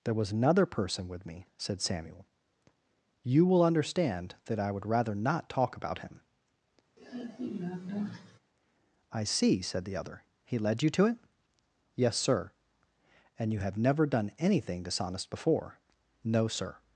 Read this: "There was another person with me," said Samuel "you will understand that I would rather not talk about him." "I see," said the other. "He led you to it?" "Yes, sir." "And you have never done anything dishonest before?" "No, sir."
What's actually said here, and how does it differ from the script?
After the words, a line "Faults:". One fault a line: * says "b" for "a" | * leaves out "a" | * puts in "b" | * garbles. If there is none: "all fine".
"There was another person with me," said Samuel "you will understand that I would rather not talk about him." "I see," said the other. "He led you to it?" "Yes, sir." "And you have never done anything dishonest before?" "No, sir."
Faults:
all fine